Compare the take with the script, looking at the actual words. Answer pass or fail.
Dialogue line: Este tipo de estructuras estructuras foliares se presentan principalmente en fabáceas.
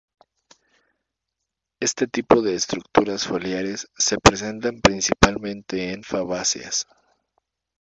fail